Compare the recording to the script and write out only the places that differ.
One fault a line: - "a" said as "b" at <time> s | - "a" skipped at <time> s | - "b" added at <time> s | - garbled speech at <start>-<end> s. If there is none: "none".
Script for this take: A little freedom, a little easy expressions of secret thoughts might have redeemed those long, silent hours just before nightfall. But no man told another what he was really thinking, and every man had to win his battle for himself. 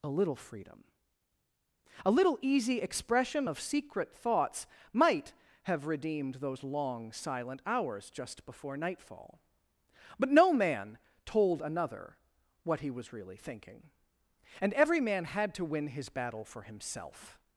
- "expressions" said as "expression" at 2.8 s